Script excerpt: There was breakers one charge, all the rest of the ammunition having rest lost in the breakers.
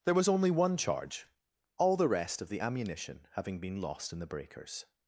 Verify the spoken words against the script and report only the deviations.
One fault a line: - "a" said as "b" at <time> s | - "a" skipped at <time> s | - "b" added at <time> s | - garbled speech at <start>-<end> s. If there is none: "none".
- "breakers" said as "only" at 0.3 s
- "rest" said as "been" at 3.6 s